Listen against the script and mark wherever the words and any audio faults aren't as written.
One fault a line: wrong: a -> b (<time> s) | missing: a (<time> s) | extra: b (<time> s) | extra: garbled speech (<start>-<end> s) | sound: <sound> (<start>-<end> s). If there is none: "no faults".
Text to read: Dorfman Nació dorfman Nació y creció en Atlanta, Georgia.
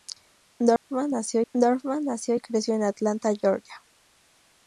sound: dropout (0.8-0.9 s)